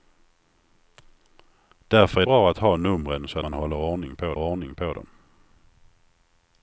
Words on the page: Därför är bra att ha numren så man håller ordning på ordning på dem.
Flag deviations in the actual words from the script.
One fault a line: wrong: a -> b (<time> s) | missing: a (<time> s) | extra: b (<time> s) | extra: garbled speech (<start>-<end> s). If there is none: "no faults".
no faults